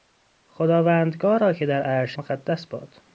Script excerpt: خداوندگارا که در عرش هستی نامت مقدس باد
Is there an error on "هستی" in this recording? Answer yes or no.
yes